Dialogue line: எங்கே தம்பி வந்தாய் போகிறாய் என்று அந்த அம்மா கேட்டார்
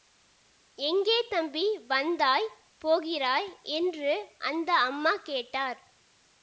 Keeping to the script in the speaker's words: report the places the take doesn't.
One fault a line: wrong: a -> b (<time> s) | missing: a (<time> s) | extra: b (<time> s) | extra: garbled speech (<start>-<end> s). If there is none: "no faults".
no faults